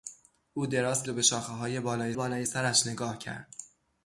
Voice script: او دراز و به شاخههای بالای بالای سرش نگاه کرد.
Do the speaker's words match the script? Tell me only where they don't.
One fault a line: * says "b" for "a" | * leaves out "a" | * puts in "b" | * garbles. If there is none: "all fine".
all fine